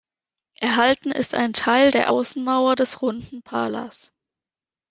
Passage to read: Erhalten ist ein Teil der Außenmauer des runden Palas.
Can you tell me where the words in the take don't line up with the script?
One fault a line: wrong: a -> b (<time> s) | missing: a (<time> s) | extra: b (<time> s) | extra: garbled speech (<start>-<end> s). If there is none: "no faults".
no faults